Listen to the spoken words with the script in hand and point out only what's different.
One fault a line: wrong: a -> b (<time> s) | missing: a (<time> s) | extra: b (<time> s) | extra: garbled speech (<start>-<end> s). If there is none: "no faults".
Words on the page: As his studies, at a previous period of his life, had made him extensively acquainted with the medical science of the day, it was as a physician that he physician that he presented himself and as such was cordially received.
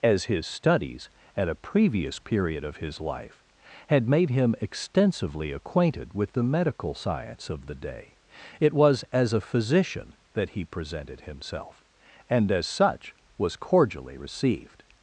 missing: physician that he (10.7 s)